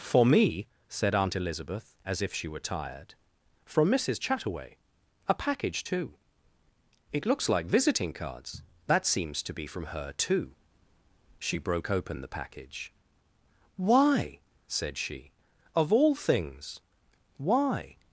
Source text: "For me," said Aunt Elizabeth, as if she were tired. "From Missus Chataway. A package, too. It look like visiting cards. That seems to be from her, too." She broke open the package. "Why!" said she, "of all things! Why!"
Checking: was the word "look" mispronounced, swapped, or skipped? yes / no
yes